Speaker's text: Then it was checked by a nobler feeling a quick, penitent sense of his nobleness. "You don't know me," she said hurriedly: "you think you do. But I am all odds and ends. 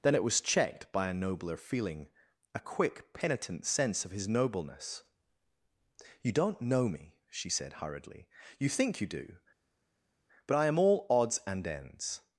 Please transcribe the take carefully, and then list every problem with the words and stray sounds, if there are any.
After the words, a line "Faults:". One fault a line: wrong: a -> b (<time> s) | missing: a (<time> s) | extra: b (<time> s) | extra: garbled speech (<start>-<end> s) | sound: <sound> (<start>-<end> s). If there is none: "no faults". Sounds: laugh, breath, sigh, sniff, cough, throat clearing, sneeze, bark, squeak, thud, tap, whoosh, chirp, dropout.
Then it was checked by a nobler feeling a quick, penitent sense of his nobleness. "You don't know me," she said hurriedly: "you think you do. But I am all odds and ends.
Faults:
no faults